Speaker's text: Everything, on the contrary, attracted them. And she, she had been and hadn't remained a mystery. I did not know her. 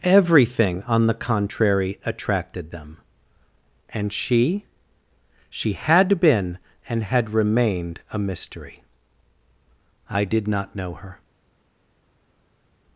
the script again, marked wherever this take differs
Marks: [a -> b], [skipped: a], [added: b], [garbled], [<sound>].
Everything, on the contrary, attracted them. And she, she had been and [hadn't -> had] remained a mystery. I did not know her.